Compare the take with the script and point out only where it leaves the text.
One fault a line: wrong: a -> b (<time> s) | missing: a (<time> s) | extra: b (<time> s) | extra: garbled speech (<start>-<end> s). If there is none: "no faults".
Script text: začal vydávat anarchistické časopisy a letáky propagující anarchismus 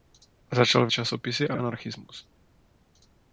missing: vydávat anarchistické (0.9 s)
missing: letáky propagující (1.6 s)